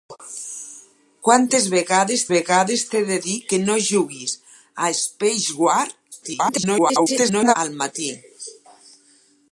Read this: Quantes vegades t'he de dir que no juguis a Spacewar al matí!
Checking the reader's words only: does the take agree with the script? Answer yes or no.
no